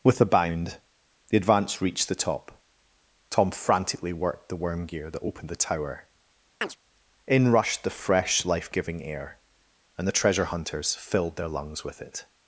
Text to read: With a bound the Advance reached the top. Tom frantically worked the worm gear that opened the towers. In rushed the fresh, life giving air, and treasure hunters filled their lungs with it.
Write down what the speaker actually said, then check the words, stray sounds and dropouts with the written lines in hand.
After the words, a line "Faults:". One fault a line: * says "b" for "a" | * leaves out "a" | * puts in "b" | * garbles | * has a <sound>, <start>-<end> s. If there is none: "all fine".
With a bound the Advance reached the top. Tom frantically worked the worm gear that opened the tower. In rushed the fresh, life giving air, and the treasure hunters filled their lungs with it.
Faults:
* says "tower" for "towers"
* has a chirp, 6.6-6.8 s
* puts in "the"